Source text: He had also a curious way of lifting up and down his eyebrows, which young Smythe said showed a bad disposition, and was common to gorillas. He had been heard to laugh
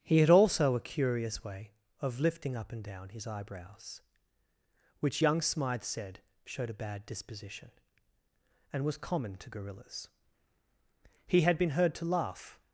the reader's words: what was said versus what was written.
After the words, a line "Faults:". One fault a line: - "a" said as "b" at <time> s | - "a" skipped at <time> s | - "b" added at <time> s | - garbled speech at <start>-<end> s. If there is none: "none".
He had also a curious way of lifting up and down his eyebrows, which young Smythe said showed a bad disposition, and was common to gorillas. He had been heard to laugh
Faults:
none